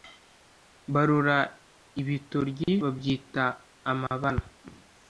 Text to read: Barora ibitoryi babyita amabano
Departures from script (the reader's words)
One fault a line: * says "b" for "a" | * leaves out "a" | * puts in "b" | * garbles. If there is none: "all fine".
all fine